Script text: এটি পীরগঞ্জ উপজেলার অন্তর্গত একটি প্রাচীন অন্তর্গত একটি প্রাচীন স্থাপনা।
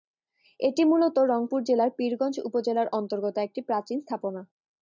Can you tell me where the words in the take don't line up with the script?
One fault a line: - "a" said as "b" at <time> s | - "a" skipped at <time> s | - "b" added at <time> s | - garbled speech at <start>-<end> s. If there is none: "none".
- "পীরগঞ্জ উপজেলার অন্তর্গত একটি প্রাচীন" said as "মূলত রংপুর জেলার পীরগঞ্জ উপজেলার" at 0.8 s